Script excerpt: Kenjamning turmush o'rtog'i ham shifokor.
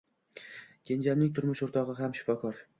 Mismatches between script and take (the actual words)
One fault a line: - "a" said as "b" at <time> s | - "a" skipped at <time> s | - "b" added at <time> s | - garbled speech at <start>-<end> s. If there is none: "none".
none